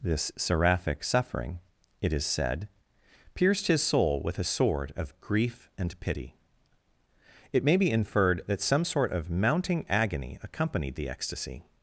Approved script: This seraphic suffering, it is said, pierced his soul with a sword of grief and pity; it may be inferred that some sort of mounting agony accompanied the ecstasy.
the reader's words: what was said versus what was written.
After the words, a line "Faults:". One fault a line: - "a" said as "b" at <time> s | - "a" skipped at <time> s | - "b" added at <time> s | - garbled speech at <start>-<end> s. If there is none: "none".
This seraphic suffering, it is said, pierced his soul with a sword of grief and pity; it may be inferred that some sort of mounting agony accompanied the ecstasy.
Faults:
none